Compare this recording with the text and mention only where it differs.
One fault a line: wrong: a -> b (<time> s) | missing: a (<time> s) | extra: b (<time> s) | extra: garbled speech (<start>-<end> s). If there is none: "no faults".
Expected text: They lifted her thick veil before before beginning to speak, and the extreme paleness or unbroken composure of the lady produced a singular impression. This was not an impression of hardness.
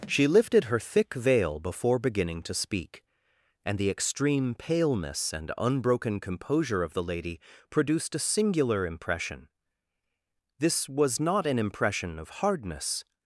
wrong: They -> She (0.1 s)
missing: before (2.0 s)
wrong: or -> and (5.3 s)